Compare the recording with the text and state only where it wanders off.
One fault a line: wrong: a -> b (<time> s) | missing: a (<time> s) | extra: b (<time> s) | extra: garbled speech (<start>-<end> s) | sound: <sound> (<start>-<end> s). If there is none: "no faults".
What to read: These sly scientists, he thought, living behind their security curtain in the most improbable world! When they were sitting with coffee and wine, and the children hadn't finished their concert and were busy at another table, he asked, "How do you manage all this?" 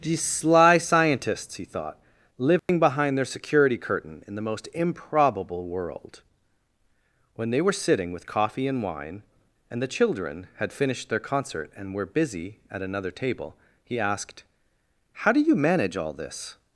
sound: dropout (2.6-2.7 s)
wrong: hadn't -> had (10.6 s)